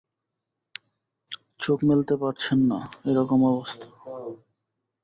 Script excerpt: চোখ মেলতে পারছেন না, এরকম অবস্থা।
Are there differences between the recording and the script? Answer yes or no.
no